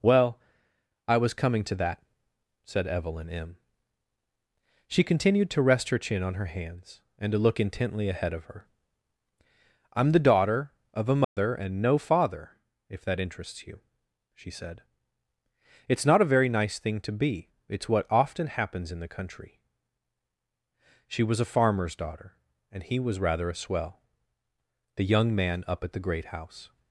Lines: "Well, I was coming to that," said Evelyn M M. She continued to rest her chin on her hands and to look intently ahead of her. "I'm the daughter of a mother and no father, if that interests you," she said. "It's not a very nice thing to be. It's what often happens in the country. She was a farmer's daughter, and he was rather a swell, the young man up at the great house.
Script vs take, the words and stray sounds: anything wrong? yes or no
yes